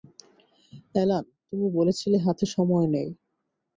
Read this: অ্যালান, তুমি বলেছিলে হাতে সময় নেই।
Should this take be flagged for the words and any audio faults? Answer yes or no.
no